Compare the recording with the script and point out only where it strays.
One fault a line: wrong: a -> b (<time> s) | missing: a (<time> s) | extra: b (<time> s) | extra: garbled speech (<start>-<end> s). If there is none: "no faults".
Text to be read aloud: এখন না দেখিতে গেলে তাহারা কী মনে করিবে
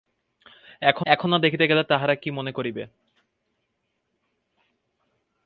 extra: এখন (1.1 s)